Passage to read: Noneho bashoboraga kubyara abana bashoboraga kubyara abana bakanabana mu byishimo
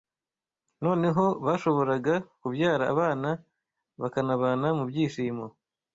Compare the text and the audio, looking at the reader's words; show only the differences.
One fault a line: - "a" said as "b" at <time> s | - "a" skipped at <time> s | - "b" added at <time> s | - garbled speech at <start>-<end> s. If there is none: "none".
- "bashoboraga kubyara abana" skipped at 3.3 s